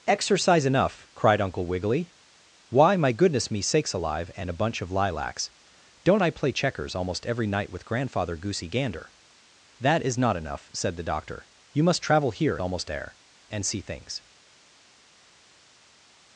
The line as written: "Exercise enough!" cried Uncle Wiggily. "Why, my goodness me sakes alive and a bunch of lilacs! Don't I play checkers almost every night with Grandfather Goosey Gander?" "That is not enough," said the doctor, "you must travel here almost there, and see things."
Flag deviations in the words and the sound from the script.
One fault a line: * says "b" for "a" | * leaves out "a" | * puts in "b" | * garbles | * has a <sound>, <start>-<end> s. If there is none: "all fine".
all fine